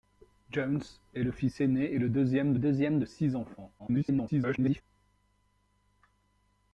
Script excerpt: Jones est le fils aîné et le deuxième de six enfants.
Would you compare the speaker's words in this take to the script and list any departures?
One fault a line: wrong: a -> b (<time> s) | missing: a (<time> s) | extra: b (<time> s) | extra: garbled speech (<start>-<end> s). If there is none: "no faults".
extra: deuxième (2.6 s)
extra: garbled speech (3.8-4.8 s)